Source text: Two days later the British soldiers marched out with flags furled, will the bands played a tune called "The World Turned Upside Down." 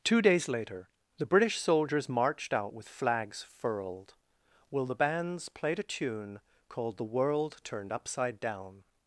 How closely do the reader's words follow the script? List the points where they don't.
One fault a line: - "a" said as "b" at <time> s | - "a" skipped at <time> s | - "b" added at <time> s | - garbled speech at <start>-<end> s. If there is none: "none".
none